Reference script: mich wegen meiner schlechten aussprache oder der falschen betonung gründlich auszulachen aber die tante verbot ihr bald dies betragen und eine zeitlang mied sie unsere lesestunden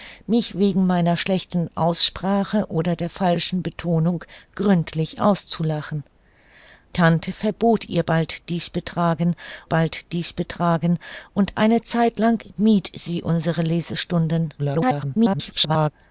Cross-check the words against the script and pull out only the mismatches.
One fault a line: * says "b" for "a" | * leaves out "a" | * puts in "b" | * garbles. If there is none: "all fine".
* leaves out "aber die"
* puts in "bald dies betragen"
* garbles